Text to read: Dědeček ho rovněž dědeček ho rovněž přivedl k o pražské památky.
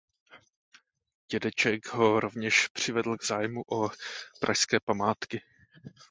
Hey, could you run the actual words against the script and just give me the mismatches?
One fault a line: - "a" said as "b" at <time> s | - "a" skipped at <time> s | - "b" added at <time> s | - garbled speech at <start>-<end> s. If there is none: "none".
- "dědeček ho rovněž" skipped at 2.7 s
- "zájmu" added at 3.2 s